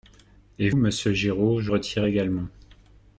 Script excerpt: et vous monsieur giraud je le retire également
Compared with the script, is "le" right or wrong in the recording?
wrong